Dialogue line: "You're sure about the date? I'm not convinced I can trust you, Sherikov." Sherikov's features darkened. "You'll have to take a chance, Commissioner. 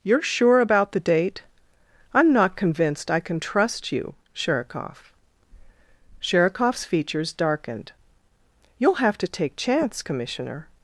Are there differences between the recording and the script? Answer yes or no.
yes